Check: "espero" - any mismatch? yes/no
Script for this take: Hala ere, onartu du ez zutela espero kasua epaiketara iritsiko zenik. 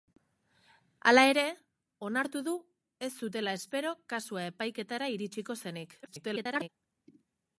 no